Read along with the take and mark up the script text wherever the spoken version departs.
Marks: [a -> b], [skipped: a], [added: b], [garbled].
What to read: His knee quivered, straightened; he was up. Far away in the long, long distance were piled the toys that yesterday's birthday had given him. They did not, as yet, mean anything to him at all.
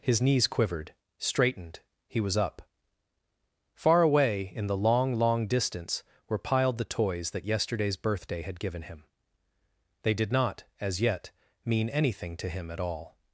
His [knee -> knees] quivered, straightened; he was up. Far away in the long, long distance were piled the toys that yesterday's birthday had given him. They did not, as yet, mean anything to him at all.